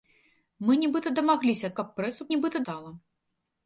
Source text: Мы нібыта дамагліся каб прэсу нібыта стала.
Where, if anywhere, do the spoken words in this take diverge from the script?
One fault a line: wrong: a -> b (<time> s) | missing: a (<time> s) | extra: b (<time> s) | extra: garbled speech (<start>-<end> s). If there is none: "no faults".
no faults